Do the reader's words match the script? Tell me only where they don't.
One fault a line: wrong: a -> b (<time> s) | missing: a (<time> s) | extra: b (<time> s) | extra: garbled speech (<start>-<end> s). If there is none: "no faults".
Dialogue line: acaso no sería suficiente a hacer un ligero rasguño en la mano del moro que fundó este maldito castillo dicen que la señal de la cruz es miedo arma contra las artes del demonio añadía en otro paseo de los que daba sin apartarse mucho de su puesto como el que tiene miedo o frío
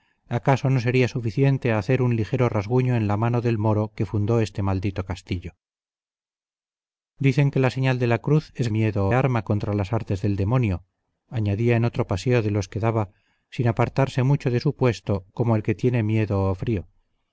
no faults